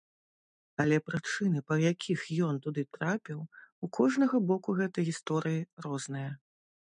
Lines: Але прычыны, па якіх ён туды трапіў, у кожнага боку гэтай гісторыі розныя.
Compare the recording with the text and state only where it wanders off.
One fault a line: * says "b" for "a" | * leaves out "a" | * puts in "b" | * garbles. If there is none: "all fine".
all fine